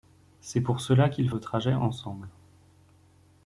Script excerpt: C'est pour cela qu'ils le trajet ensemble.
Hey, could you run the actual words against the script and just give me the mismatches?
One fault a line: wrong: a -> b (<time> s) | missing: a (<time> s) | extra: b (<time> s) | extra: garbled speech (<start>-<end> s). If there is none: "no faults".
no faults